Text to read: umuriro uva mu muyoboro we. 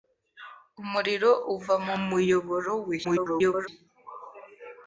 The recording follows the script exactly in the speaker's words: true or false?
false